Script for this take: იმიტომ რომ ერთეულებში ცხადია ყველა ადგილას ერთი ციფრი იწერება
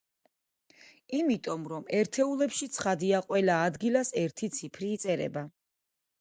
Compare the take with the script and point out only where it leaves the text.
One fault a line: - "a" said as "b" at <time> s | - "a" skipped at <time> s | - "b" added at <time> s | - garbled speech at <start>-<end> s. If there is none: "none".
none